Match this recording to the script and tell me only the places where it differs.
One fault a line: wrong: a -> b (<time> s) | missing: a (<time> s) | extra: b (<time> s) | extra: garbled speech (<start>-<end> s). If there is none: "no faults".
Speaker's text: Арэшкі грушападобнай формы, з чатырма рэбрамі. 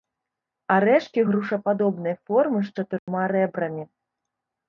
no faults